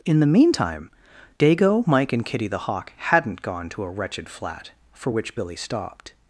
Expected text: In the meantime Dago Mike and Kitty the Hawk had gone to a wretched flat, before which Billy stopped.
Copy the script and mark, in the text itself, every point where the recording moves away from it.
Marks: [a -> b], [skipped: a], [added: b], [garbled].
In the meantime Dago Mike and Kitty the Hawk [had -> hadn't] gone to a wretched flat, [before -> for] which Billy stopped.